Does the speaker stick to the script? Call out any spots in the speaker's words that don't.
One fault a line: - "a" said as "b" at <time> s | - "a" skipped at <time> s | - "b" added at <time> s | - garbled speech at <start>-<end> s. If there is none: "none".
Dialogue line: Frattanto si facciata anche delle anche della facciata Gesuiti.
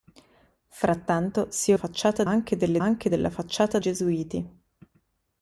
none